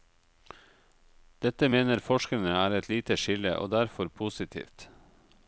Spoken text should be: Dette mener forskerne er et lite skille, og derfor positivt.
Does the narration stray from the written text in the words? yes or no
no